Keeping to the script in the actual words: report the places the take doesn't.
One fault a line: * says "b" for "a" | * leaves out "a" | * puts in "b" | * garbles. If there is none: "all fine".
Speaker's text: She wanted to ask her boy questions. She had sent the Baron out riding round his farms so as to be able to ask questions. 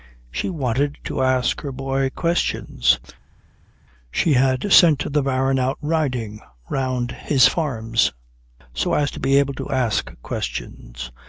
all fine